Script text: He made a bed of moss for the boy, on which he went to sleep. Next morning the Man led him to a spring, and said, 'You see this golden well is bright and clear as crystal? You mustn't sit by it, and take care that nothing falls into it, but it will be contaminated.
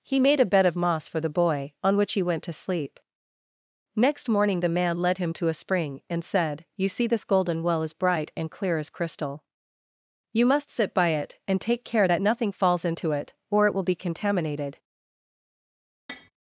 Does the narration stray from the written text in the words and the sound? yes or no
yes